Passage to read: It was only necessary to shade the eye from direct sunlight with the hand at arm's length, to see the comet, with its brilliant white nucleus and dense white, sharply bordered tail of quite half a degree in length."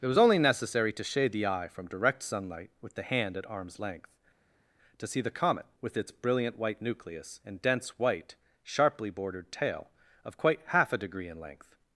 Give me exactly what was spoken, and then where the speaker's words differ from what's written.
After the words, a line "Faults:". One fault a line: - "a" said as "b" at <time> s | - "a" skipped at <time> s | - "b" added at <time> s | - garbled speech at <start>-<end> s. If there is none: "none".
It was only necessary to shade the eye from direct sunlight with the hand at arm's length, to see the comet, with its brilliant white nucleus and dense white, sharply bordered tail of quite half a degree in length."
Faults:
none